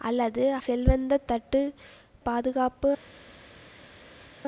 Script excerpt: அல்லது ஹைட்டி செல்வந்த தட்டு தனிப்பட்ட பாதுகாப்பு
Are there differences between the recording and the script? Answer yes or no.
yes